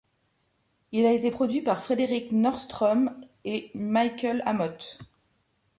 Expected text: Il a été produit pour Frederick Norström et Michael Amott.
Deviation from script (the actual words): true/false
true